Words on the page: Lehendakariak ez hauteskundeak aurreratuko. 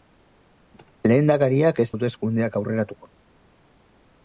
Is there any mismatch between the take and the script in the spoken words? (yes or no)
no